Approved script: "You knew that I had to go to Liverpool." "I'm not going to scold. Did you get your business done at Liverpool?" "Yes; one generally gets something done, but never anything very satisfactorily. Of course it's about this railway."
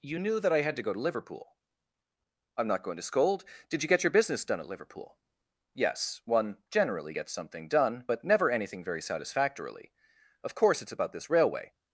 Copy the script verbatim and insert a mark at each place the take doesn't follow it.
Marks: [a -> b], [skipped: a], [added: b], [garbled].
"You knew that I had to go to Liverpool." "I'm not going to scold. Did you get your business done at Liverpool?" "Yes; one generally gets something done, but never anything very satisfactorily. Of course it's about this railway."